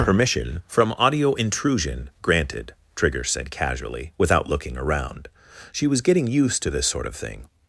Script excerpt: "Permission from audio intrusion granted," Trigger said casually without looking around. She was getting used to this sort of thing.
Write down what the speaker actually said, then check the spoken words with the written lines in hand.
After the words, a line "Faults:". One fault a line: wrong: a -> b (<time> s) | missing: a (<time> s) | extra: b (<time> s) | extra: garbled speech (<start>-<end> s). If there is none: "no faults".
"Permission from audio intrusion granted," Trigger said casually without looking around. She was getting used to this sort of thing.
Faults:
no faults